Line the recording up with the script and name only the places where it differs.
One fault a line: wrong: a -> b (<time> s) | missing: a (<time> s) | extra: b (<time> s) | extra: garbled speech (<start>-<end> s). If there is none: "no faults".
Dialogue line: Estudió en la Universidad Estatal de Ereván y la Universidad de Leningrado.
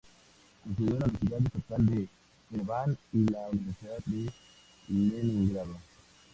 no faults